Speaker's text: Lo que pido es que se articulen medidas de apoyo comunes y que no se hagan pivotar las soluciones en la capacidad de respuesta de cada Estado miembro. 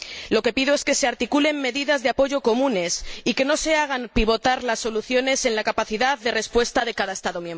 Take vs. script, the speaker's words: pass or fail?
pass